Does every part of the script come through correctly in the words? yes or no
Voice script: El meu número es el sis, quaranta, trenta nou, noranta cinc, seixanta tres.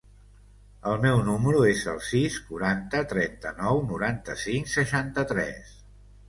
yes